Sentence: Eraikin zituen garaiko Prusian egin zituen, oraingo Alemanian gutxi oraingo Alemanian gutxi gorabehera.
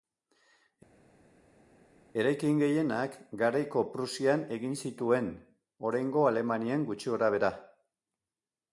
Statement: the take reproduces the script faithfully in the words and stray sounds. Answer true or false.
false